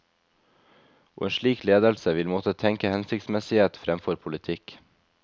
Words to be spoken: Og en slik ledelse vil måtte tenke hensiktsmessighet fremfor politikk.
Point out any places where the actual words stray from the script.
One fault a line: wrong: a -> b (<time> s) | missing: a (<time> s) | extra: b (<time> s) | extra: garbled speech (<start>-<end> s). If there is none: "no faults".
no faults